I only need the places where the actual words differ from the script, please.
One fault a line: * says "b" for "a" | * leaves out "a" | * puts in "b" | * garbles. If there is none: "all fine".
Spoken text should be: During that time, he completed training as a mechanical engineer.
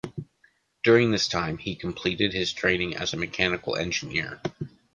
* says "this" for "that"
* puts in "his"